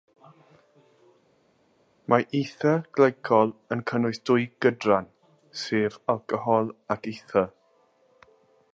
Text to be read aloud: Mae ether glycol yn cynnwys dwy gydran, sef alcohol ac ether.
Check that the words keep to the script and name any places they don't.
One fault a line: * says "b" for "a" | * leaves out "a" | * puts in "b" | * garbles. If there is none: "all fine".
all fine